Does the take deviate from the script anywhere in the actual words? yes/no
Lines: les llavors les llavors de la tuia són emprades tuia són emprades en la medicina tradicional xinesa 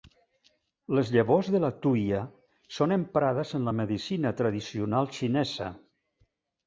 yes